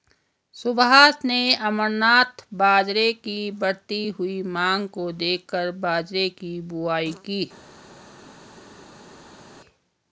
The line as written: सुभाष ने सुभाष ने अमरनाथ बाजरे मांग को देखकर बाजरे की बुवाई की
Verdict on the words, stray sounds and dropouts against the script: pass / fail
fail